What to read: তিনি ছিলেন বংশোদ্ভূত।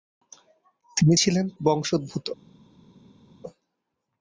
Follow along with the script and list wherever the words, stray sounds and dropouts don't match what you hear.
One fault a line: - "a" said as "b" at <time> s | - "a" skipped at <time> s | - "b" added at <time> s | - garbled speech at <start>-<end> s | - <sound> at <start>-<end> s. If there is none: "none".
none